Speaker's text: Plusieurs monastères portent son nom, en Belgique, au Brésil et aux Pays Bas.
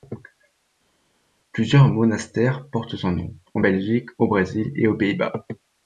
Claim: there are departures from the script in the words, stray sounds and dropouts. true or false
false